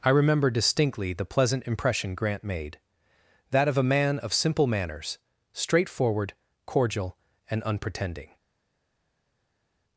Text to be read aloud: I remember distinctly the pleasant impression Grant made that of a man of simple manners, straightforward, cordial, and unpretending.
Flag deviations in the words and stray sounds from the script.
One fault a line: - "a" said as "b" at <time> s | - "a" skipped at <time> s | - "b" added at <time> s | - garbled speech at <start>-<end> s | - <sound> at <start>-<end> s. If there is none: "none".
none